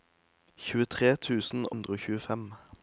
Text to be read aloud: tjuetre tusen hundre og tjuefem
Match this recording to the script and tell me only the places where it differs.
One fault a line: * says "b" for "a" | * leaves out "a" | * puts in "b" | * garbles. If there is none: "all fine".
all fine